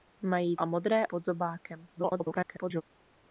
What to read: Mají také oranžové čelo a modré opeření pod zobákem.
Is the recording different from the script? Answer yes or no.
yes